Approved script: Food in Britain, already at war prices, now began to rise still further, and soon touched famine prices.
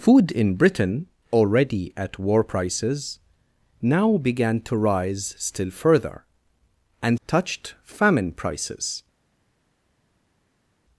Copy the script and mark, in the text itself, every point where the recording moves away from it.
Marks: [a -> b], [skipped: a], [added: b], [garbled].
Food in Britain, already at war prices, now began to rise still further, and [skipped: soon] touched famine prices.